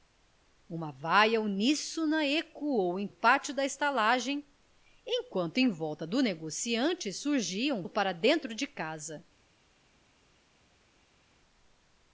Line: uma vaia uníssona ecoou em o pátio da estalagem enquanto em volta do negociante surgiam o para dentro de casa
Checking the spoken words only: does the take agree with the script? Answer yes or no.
yes